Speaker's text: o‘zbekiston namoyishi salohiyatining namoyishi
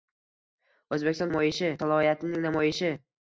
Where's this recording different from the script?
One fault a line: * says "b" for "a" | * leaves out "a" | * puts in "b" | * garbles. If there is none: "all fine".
all fine